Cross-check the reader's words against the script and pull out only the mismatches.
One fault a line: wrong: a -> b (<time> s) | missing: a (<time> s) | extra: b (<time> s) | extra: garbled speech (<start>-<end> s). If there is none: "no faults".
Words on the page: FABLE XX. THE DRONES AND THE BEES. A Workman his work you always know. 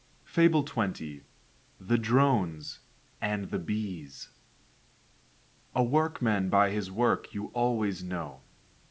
extra: by (6.5 s)